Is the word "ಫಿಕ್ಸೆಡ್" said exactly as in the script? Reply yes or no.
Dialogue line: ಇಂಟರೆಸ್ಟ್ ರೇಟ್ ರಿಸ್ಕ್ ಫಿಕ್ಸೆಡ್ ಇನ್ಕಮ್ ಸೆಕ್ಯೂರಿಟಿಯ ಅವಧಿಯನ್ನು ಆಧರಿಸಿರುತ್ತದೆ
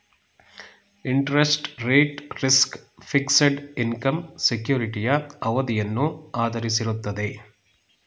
yes